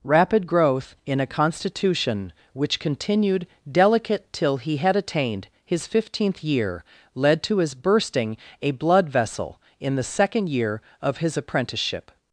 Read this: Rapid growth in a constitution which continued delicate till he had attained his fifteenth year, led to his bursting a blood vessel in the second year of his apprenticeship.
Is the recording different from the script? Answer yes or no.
no